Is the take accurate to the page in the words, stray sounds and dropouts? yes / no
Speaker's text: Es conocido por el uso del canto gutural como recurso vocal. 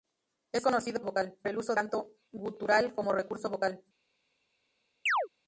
no